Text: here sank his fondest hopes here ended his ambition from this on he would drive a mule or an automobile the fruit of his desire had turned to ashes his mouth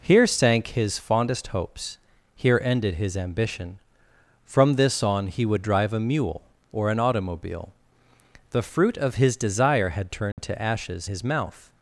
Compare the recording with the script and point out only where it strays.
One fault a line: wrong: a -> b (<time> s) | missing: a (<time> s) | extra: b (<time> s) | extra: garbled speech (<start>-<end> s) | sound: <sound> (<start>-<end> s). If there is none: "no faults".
sound: dropout (10.3-10.4 s)